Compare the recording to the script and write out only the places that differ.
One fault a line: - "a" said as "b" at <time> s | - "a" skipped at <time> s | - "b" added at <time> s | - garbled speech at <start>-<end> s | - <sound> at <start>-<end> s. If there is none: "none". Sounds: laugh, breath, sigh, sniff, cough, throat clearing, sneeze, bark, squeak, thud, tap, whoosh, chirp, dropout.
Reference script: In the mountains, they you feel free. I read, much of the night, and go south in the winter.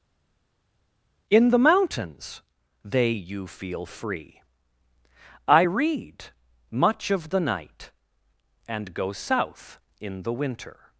none